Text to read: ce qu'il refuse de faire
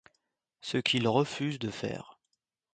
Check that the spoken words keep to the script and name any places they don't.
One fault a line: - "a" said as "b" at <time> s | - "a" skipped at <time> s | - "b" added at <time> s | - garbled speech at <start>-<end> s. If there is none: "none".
none